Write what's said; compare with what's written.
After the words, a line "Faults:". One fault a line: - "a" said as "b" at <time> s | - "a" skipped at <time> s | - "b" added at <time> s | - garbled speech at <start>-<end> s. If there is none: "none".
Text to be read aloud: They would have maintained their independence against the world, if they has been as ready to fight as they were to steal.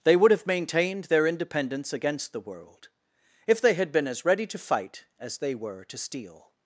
They would have maintained their independence against the world, if they had been as ready to fight as they were to steal.
Faults:
- "has" said as "had" at 3.7 s